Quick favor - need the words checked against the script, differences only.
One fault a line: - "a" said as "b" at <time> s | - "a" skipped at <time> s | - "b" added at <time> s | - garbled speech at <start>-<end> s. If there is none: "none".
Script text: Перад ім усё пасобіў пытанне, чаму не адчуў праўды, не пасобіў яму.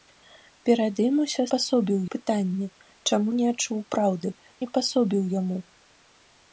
none